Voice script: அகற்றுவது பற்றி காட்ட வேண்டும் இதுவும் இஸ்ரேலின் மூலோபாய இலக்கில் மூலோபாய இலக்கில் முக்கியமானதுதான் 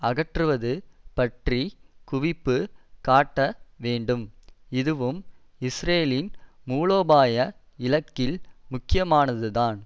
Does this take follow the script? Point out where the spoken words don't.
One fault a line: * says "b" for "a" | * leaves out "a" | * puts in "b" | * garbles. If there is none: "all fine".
* puts in "குவிப்பு"
* leaves out "மூலோபாய இலக்கில்"